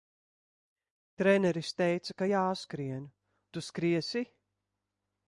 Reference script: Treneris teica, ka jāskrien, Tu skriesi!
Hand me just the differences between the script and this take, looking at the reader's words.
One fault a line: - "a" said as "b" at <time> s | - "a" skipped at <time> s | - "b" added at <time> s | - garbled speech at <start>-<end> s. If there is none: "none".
none